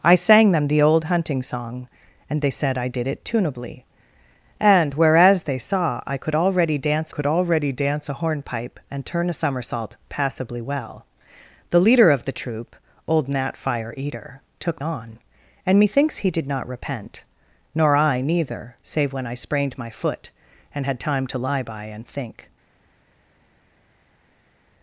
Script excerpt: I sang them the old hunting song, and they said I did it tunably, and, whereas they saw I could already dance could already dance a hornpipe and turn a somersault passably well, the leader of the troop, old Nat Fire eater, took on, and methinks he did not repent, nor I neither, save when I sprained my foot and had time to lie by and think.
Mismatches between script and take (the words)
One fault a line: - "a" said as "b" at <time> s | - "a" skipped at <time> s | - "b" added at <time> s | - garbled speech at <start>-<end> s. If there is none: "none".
none